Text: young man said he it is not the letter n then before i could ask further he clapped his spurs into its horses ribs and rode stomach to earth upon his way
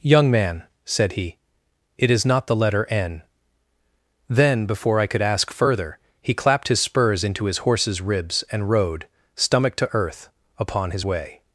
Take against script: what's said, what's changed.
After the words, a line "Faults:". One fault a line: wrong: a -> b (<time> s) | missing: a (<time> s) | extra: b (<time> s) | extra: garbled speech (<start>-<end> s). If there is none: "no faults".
young man said he it is not the letter n then before i could ask further he clapped his spurs into his horses ribs and rode stomach to earth upon his way
Faults:
wrong: its -> his (7.5 s)